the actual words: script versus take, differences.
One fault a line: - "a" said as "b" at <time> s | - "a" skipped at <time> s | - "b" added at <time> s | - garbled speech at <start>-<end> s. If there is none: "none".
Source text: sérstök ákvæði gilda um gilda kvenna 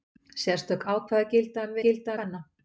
none